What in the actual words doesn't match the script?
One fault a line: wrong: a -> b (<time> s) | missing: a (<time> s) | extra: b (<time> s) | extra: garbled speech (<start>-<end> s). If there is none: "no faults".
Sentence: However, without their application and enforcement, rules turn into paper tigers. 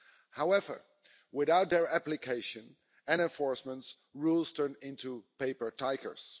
no faults